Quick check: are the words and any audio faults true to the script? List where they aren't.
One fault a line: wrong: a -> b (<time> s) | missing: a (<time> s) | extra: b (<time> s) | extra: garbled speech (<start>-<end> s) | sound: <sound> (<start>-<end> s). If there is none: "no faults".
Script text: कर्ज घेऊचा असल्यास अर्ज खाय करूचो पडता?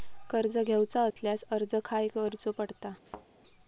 sound: dropout (1.1-1.2 s)
sound: thud (3.1-3.3 s)